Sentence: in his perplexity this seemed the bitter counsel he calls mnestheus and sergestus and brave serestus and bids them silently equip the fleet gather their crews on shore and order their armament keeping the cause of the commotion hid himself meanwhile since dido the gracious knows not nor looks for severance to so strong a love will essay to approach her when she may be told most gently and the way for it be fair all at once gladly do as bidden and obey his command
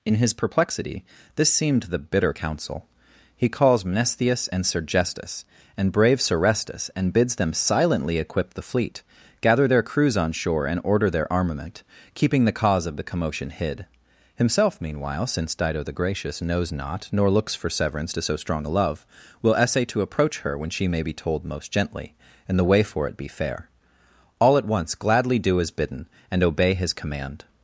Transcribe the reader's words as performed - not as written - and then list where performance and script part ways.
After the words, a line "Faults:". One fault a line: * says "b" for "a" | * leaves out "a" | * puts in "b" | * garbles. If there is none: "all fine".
in his perplexity this seemed the bitter counsel he calls mnestheus and sergestus and brave serestus and bids them silently equip the fleet gather their crews on shore and order their armament keeping the cause of the commotion hid himself meanwhile since dido the gracious knows not nor looks for severance to so strong a love will essay to approach her when she may be told most gently and the way for it be fair all at once gladly do as bidden and obey his command
Faults:
all fine